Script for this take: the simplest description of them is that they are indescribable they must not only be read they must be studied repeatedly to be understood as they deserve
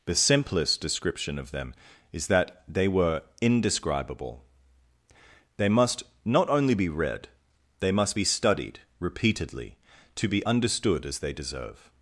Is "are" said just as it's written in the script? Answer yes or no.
no